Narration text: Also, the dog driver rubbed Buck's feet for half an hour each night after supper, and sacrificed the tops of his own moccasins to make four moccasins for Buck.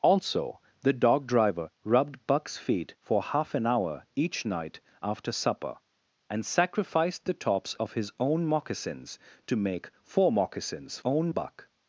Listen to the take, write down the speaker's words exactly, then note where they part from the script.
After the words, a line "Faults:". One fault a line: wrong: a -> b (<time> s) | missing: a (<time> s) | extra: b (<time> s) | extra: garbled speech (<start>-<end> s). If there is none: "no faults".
Also, the dog driver rubbed Buck's feet for half an hour each night after supper, and sacrificed the tops of his own moccasins to make four moccasins own Buck.
Faults:
wrong: for -> own (11.0 s)